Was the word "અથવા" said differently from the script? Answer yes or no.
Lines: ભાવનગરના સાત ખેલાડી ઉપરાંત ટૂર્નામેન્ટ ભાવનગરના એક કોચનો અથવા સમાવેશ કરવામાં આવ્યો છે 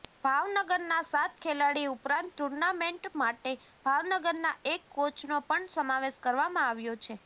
yes